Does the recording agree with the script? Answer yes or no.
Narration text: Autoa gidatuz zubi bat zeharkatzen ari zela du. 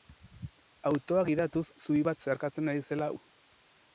yes